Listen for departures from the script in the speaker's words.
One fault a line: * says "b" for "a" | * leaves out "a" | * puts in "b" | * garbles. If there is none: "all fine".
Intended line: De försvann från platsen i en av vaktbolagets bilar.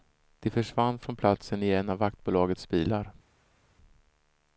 all fine